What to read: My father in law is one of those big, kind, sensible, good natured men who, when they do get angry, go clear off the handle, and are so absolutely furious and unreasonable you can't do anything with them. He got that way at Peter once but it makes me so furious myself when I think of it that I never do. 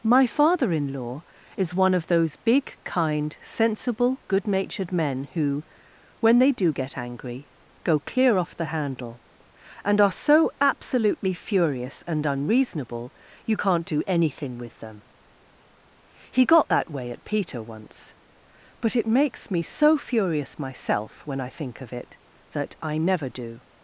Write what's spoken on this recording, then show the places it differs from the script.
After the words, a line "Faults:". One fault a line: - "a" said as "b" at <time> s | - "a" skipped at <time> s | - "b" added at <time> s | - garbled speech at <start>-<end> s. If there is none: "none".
My father in law is one of those big, kind, sensible, good natured men who, when they do get angry, go clear off the handle, and are so absolutely furious and unreasonable you can't do anything with them. He got that way at Peter once but it makes me so furious myself when I think of it that I never do.
Faults:
none